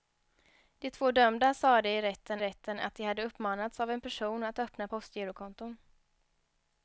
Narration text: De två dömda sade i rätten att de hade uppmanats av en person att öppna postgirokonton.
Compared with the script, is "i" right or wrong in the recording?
right